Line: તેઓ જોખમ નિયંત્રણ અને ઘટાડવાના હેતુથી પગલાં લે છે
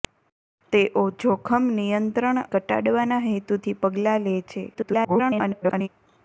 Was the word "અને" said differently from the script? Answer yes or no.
yes